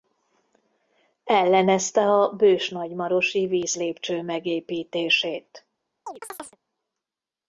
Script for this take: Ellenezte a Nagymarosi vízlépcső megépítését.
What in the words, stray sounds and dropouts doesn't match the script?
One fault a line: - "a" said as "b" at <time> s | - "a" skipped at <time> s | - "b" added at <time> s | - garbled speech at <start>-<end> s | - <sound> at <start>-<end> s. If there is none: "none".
- "Bős" added at 2.3 s
- chirp at 6.1-6.6 s